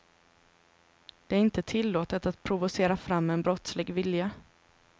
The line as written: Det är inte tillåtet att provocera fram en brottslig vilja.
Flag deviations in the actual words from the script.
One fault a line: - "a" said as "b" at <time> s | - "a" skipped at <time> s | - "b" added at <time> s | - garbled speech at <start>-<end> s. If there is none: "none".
none